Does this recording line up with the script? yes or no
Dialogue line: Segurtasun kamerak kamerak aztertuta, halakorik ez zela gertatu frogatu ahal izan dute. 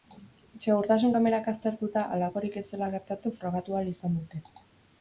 no